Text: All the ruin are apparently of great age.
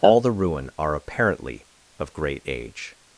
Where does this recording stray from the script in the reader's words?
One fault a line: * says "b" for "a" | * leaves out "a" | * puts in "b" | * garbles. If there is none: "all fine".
all fine